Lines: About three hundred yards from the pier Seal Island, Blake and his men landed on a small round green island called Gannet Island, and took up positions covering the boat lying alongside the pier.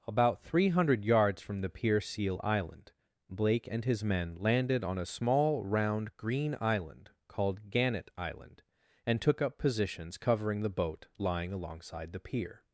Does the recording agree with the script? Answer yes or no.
yes